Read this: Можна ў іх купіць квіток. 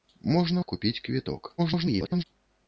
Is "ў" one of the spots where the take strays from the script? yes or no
yes